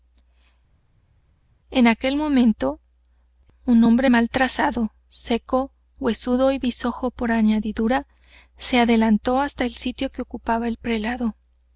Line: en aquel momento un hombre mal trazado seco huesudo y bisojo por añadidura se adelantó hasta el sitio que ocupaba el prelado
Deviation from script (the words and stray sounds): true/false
false